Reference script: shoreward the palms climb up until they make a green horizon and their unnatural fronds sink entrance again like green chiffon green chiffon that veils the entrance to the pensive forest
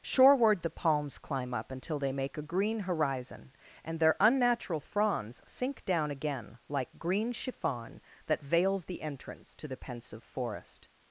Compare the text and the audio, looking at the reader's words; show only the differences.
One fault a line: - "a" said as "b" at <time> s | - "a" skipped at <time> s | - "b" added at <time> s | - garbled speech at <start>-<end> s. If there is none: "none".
- "entrance" said as "down" at 5.8 s
- "green chiffon" skipped at 8.0 s